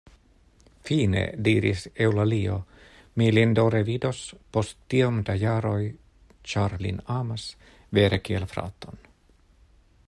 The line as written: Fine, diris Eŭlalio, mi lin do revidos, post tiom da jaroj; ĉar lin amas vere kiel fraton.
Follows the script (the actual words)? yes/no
yes